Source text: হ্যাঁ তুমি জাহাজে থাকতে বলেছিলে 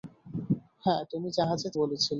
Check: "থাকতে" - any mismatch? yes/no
yes